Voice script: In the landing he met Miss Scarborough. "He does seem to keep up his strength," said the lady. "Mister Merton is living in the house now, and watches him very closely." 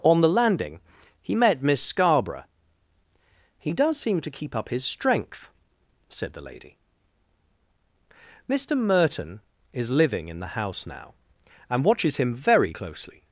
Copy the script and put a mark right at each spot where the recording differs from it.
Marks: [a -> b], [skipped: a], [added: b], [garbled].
[In -> On] the landing he met Miss Scarborough. "He does seem to keep up his strength," said the lady. "Mister Merton is living in the house now, and watches him very closely."